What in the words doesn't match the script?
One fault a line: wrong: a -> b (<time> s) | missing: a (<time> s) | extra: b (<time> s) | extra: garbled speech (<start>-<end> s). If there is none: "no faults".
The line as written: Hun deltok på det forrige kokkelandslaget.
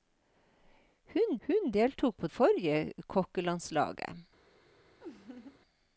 extra: hun (1.5 s)
missing: det (2.3 s)